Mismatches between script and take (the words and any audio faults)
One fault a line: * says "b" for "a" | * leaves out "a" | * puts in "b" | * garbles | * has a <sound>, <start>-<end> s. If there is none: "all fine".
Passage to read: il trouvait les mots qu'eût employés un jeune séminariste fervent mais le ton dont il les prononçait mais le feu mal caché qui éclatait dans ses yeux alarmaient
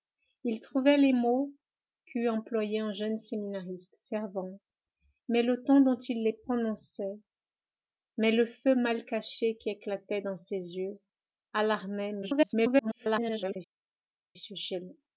* garbles